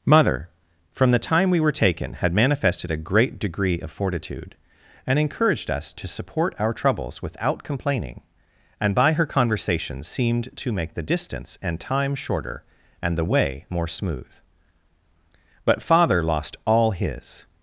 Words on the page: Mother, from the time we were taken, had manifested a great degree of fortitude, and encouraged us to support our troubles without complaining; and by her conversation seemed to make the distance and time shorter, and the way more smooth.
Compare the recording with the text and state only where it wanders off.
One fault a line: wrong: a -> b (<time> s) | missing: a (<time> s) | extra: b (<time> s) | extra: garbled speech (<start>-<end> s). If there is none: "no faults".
extra: But father lost all his (15.6 s)